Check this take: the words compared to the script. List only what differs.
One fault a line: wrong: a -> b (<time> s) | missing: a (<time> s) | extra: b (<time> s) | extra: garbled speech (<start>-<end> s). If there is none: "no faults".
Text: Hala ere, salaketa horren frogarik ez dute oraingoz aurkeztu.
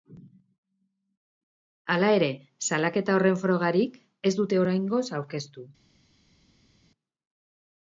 no faults